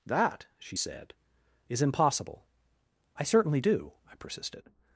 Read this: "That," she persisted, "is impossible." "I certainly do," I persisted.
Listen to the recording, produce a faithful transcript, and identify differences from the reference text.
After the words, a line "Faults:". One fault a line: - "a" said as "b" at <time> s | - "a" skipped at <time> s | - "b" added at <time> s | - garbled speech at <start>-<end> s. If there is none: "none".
"That," she said, "is impossible." "I certainly do," I persisted.
Faults:
- "persisted" said as "said" at 0.7 s